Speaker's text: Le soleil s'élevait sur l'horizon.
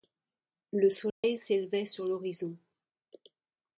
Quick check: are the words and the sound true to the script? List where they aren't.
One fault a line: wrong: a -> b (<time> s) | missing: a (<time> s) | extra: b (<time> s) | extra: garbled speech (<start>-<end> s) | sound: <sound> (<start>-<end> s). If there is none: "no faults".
sound: dropout (1.1-1.2 s)